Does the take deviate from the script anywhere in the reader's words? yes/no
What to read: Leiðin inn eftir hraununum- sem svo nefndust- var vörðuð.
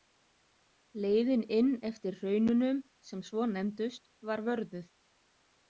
no